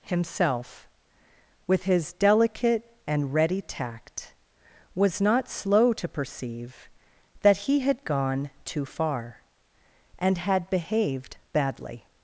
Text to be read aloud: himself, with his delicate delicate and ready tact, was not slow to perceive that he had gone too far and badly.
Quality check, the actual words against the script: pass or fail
fail